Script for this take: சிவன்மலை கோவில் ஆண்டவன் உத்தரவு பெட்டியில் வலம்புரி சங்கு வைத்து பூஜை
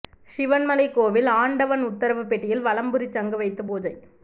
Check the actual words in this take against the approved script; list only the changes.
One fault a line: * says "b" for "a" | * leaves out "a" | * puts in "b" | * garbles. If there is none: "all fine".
all fine